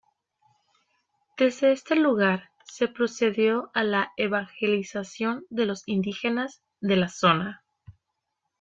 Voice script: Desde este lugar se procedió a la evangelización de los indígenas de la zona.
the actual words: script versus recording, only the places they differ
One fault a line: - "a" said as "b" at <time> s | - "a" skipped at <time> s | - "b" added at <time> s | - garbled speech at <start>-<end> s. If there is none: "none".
none